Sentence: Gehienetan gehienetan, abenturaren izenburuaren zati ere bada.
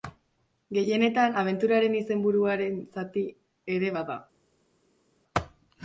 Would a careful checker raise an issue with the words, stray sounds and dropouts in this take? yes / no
yes